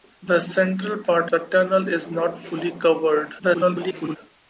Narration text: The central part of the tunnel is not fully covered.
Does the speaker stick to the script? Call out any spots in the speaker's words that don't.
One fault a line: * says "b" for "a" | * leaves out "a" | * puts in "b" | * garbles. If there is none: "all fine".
* leaves out "of"
* garbles